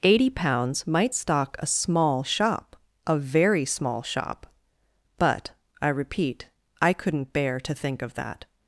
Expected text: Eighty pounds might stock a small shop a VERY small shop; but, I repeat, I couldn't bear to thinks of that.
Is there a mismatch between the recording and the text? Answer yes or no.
yes